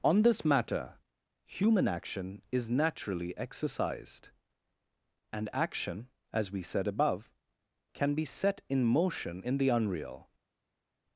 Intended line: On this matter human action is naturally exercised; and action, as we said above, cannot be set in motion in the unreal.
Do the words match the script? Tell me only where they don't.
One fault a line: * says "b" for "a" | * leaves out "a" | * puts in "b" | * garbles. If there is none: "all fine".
* says "can" for "cannot"